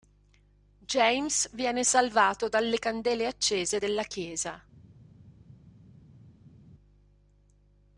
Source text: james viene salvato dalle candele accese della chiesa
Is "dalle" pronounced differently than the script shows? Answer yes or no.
no